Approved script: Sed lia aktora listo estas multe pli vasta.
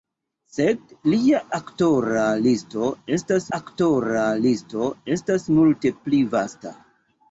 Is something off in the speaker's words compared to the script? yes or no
yes